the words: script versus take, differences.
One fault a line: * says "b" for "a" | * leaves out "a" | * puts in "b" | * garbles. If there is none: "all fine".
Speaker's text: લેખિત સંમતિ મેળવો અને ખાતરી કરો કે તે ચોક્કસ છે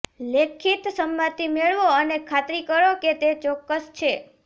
all fine